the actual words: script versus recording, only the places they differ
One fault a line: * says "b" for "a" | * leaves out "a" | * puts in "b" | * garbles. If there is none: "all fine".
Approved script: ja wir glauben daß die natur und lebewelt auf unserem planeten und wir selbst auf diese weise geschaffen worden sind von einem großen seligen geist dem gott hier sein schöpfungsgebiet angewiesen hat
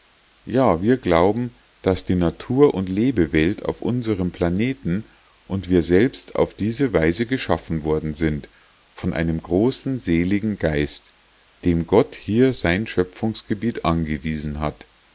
all fine